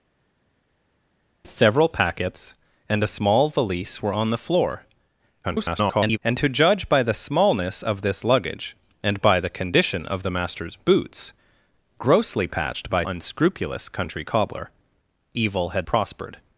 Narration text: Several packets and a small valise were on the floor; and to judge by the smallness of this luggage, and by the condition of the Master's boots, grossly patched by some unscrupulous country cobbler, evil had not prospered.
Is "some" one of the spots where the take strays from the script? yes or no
yes